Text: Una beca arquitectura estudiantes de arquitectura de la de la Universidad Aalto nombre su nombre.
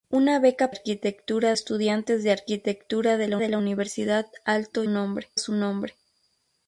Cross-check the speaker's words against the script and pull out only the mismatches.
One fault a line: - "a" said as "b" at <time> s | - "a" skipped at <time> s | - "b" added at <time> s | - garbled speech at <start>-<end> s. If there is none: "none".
none